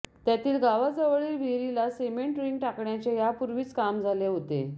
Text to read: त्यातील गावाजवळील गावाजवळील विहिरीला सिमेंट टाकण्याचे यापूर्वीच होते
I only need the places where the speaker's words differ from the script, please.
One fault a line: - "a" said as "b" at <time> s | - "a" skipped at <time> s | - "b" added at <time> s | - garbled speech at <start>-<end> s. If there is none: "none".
- "गावाजवळील" skipped at 1.4 s
- "रिंग" added at 2.4 s
- "काम झाले" added at 3.7 s